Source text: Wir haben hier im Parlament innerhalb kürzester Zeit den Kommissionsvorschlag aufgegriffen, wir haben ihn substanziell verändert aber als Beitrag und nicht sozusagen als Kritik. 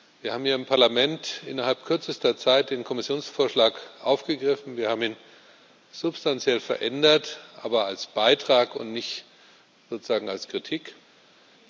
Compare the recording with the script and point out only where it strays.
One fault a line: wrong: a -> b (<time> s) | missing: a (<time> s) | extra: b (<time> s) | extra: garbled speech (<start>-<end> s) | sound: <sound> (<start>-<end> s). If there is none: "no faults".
no faults